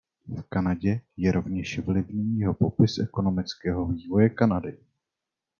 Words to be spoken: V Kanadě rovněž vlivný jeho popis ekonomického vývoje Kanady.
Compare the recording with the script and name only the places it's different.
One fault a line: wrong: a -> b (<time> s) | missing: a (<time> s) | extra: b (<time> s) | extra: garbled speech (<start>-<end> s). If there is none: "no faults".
extra: je (1.2 s)